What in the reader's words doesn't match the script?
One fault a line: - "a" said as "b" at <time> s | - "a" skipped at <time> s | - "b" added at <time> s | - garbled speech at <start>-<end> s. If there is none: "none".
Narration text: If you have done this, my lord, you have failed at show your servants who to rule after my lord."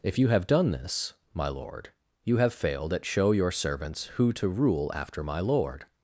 none